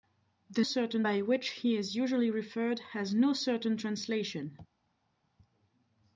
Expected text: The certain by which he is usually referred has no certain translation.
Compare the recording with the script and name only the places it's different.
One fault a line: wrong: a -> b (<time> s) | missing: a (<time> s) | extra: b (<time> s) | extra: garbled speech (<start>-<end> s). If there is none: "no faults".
no faults